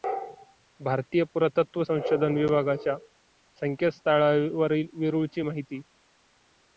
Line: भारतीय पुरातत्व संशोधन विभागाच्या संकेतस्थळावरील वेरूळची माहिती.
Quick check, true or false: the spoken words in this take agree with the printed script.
true